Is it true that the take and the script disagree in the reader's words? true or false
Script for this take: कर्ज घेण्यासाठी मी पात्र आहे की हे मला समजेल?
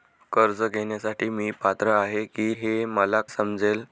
false